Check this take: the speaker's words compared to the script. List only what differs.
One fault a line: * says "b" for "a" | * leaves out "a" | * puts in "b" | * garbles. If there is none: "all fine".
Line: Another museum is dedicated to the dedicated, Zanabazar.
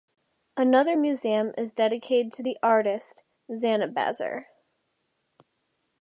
* says "artist" for "dedicated"